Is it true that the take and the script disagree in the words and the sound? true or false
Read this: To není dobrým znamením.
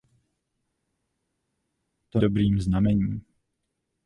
true